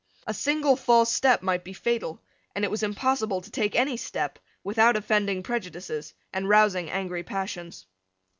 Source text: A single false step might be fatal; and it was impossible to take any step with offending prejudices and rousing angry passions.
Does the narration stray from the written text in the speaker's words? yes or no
yes